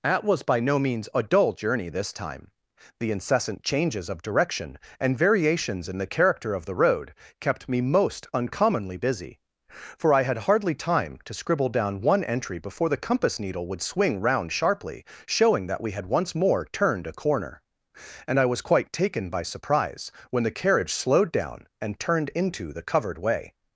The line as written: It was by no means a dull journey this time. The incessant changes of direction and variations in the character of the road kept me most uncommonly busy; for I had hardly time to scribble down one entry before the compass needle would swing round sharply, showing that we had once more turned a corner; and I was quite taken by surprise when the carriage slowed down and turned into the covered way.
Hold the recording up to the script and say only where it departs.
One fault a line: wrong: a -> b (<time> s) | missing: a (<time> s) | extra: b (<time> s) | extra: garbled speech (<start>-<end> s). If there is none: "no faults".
wrong: It -> At (0.0 s)